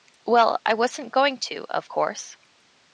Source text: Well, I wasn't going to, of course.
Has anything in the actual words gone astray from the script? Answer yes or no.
no